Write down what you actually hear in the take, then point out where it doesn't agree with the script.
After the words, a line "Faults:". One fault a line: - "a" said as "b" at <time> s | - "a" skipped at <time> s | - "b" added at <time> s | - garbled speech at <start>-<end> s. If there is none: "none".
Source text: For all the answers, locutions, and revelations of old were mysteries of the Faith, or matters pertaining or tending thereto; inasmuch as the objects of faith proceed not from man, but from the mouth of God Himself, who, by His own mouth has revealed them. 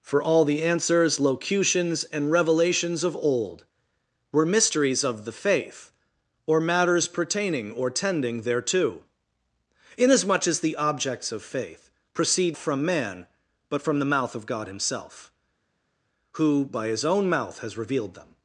For all the answers, locutions, and revelations of old were mysteries of the Faith, or matters pertaining or tending thereto; inasmuch as the objects of faith proceed from man, but from the mouth of God Himself, who, by His own mouth has revealed them.
Faults:
- "not" skipped at 12.6 s